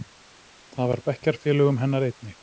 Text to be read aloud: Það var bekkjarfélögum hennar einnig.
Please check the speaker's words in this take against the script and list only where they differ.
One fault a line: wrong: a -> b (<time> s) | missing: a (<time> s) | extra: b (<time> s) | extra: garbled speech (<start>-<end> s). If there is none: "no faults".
no faults